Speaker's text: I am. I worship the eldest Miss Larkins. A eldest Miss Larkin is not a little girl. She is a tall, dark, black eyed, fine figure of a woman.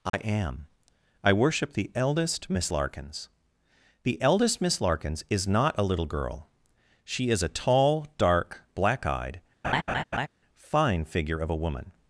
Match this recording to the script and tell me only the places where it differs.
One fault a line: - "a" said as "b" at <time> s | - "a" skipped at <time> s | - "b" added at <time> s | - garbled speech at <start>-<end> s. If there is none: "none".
- "A" said as "The" at 4.0 s
- "Larkin" said as "Larkins" at 4.8 s